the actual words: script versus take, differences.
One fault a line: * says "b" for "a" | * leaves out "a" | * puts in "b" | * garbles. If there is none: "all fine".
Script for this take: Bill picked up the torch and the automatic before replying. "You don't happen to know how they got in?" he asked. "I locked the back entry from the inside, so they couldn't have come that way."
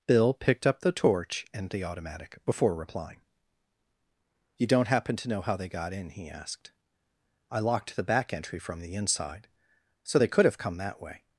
* says "could" for "couldn't"